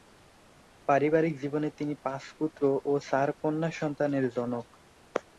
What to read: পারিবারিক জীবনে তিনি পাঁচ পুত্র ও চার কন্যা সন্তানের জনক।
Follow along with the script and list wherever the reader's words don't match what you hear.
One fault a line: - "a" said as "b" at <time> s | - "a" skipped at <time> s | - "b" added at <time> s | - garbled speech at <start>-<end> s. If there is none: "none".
none